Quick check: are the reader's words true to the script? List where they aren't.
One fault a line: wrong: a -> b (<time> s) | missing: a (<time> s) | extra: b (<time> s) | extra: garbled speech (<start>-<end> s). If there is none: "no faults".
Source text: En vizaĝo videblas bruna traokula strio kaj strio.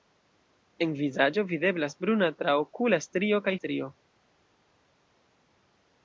no faults